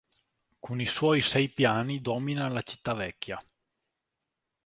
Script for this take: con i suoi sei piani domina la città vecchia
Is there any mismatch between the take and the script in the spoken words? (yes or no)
no